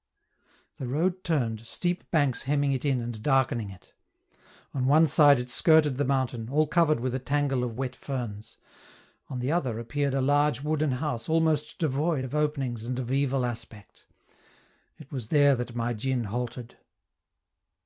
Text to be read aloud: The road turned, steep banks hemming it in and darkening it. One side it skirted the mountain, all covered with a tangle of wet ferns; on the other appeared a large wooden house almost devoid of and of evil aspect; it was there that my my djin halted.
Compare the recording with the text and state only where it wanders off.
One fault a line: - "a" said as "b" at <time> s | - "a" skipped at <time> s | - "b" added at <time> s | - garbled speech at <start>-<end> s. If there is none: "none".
- "On" added at 4.7 s
- "openings" added at 12.3 s
- "my" skipped at 15.9 s